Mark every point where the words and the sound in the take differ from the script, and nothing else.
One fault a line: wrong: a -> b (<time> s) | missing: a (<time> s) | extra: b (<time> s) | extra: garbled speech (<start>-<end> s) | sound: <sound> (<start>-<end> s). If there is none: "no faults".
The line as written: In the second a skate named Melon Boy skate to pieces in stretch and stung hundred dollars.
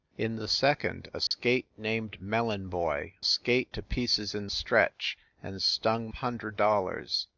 sound: dropout (1.3-1.3 s)